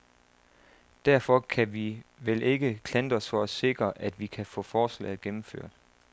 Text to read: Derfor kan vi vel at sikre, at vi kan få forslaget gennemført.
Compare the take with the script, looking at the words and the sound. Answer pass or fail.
fail